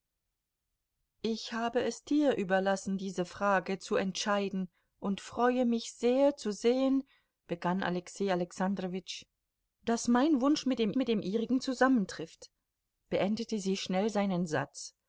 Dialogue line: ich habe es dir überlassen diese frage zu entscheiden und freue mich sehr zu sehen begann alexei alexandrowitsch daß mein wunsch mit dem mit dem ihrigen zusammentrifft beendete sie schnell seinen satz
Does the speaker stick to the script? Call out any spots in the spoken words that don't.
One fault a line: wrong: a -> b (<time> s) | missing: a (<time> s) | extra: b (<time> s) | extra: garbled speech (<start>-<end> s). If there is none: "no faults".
no faults